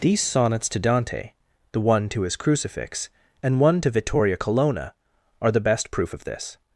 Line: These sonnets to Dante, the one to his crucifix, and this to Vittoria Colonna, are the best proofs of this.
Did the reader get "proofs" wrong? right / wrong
wrong